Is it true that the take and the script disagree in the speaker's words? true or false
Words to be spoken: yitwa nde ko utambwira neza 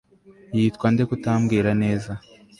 false